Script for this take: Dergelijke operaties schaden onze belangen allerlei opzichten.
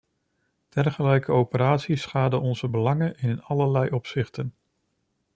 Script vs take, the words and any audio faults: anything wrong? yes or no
yes